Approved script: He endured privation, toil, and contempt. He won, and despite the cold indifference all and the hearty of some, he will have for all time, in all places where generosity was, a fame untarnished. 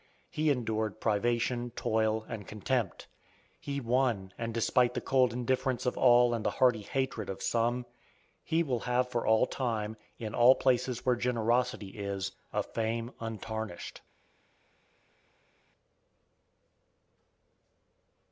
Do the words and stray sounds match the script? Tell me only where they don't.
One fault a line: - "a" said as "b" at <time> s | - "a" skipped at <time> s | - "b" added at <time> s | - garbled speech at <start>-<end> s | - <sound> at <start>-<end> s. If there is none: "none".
- "of" added at 5.8 s
- "hatred" added at 6.8 s
- "was" said as "is" at 11.9 s